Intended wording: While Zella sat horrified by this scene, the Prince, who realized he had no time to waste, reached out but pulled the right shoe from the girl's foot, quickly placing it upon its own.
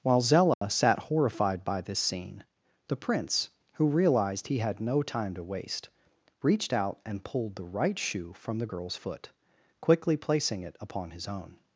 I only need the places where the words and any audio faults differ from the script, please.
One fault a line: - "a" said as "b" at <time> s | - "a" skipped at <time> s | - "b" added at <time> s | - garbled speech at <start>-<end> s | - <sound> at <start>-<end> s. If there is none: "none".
- dropout at 0.5-0.6 s
- "but" said as "and" at 7.0 s
- "its" said as "his" at 11.1 s